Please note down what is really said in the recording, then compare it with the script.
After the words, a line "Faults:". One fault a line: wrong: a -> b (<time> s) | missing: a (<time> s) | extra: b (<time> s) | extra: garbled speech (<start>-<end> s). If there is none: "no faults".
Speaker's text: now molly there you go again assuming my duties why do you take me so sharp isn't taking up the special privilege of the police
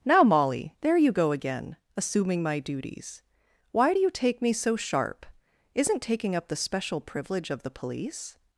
now molly there you go again assuming my duties why do you take me so sharp isn't taking up the special privilege of the police
Faults:
no faults